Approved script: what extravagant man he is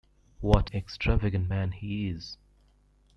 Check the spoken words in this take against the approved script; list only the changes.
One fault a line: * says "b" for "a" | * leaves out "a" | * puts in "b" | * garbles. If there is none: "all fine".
all fine